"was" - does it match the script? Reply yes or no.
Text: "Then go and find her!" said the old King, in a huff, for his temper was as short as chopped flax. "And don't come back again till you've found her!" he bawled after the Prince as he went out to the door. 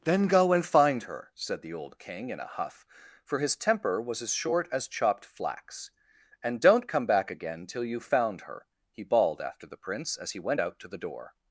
yes